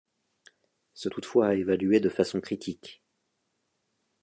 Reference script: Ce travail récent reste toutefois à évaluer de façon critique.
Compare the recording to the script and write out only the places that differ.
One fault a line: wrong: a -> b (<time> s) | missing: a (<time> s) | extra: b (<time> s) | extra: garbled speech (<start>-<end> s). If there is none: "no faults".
missing: travail récent reste (1.1 s)